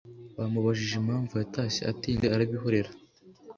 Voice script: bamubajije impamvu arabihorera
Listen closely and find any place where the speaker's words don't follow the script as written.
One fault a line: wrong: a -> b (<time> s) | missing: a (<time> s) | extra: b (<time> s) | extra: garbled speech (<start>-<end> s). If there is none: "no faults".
extra: yatashye atinze (1.4 s)